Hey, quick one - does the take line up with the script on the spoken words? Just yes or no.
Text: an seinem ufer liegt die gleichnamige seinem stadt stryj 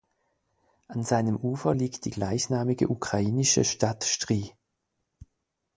no